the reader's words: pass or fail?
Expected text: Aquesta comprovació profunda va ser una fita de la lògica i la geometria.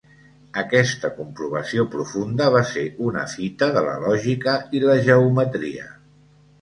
pass